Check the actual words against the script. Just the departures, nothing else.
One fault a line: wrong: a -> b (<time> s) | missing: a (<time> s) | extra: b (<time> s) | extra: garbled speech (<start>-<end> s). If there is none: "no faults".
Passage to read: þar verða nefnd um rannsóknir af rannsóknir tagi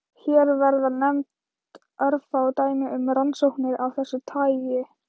wrong: þar -> hér (0.2 s)
extra: örfá dæmi (2.1 s)
wrong: rannsóknir -> þessu (4.0 s)